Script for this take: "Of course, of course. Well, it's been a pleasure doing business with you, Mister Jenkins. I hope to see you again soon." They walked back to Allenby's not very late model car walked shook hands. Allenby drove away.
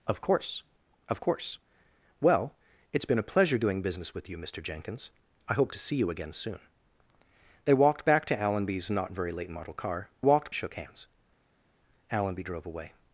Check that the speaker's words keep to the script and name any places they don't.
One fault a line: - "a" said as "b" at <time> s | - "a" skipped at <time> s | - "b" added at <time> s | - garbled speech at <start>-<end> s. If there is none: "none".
none